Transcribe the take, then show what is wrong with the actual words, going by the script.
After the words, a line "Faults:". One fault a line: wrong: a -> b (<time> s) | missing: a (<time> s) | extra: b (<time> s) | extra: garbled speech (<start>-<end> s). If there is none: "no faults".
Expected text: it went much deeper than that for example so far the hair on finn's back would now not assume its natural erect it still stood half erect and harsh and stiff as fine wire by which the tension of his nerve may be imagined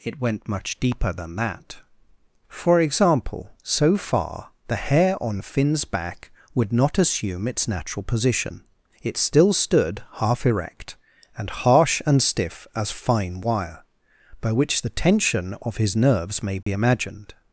it went much deeper than that for example so far the hair on finn's back would not assume its natural position it still stood half erect and harsh and stiff as fine wire by which the tension of his nerves may be imagined
Faults:
missing: now (6.7 s)
wrong: erect -> position (8.0 s)
wrong: nerve -> nerves (15.9 s)